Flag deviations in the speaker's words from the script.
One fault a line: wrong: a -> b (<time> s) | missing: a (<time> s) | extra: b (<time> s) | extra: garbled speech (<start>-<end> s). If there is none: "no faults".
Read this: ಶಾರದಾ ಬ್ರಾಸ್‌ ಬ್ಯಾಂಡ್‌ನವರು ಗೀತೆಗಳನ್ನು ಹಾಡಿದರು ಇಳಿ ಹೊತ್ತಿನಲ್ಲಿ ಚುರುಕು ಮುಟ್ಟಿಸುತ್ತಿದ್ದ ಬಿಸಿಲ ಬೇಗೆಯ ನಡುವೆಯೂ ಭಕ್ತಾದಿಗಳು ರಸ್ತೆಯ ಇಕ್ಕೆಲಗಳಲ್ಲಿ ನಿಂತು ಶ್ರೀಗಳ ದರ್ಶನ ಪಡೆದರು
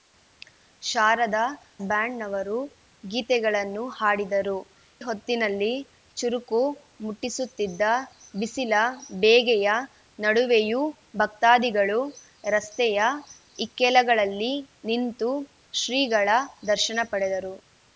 missing: ಬ್ರಾಸ್ (1.4 s)
missing: ಇಳಿ (4.6 s)